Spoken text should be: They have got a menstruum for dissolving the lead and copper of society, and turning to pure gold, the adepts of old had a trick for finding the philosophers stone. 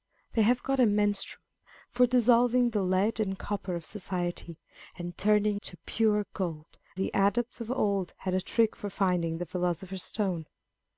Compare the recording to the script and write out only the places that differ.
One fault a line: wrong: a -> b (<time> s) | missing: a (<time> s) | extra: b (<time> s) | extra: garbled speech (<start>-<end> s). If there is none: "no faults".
no faults